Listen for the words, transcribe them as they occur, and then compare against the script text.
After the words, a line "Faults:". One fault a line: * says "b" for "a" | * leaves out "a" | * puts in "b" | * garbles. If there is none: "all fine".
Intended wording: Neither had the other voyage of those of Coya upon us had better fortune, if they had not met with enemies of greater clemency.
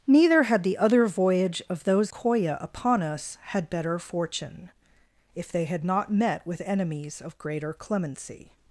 Neither had the other voyage of those Coya upon us had better fortune, if they had not met with enemies of greater clemency.
Faults:
* leaves out "of"